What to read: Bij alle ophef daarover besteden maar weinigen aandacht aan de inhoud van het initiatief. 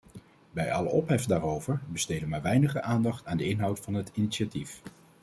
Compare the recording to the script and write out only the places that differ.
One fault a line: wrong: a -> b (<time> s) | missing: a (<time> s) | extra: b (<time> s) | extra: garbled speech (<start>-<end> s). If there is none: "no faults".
no faults